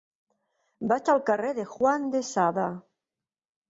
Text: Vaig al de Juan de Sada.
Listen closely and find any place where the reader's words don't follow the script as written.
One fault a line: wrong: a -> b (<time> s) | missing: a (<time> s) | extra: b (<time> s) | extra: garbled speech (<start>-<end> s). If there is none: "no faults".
extra: carrer (1.3 s)